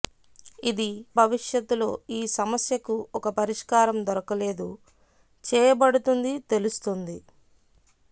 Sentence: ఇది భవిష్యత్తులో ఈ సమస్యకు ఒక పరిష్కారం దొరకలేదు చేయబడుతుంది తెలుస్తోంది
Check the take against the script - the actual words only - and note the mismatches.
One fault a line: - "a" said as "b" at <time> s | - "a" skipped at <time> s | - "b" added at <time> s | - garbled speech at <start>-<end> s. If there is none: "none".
none